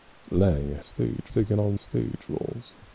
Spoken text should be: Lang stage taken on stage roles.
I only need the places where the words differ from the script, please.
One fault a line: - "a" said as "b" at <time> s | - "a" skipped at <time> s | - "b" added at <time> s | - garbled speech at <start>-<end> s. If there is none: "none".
none